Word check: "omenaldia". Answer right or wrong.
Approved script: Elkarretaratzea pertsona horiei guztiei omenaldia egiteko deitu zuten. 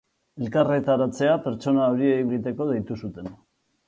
wrong